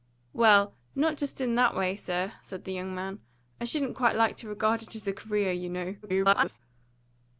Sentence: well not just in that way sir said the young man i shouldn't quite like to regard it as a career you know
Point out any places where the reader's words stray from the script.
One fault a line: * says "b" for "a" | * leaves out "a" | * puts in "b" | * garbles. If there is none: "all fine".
* garbles